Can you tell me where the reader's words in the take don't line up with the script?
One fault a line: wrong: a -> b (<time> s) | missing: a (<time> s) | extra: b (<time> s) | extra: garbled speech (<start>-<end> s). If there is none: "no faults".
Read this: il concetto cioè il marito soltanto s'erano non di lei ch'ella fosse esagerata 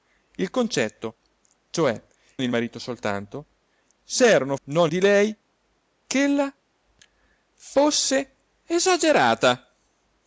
no faults